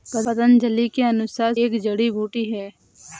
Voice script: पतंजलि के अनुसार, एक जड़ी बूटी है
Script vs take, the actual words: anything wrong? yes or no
no